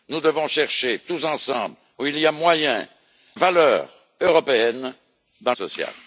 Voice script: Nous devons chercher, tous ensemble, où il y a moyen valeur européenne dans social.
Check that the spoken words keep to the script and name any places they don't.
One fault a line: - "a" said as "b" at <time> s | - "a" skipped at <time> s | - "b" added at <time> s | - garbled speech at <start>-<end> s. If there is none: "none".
none